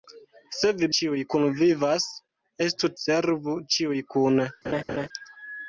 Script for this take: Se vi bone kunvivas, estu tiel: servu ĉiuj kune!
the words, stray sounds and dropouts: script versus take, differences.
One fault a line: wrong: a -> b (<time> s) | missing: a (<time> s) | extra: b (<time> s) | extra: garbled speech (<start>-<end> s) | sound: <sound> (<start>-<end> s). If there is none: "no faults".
wrong: bone -> ĉiuj (1.0 s)
missing: tiel (2.9 s)
sound: laugh (4.6-5.1 s)